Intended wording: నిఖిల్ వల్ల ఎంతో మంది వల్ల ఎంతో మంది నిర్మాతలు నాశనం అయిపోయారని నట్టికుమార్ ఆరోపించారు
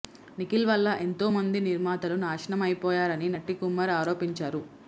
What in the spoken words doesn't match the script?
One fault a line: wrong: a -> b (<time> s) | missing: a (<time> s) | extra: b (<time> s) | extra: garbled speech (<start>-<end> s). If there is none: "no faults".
missing: వల్ల ఎంతో మంది (1.6 s)